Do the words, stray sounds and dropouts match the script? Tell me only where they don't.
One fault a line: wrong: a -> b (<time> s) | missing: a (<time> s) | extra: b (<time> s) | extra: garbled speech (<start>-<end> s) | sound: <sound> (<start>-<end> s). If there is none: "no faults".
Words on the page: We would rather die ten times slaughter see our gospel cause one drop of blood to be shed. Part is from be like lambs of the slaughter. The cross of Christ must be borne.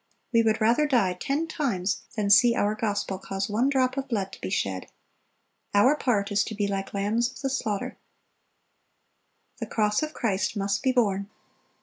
wrong: slaughter -> than (2.1 s)
extra: Our (5.7 s)
wrong: from -> to (6.4 s)